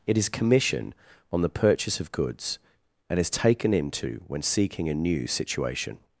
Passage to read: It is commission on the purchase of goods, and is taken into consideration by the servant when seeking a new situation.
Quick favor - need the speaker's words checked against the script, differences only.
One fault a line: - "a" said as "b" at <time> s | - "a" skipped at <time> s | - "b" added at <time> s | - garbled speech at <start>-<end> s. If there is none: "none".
- "consideration by the servant" skipped at 4.2 s